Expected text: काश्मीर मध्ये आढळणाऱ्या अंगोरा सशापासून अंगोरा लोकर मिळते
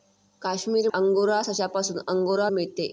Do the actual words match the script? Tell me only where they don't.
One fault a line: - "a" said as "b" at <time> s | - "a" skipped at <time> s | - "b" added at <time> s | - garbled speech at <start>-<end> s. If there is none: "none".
- "मध्ये आढळणाऱ्या" skipped at 0.9 s
- "लोकर" skipped at 2.5 s